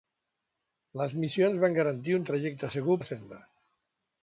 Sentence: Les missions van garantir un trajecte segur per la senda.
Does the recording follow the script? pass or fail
fail